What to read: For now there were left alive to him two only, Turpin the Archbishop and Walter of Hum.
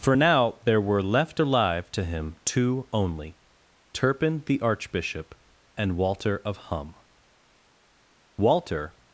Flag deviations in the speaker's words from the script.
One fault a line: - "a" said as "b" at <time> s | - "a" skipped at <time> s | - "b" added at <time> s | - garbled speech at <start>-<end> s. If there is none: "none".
- "Walter" added at 8.4 s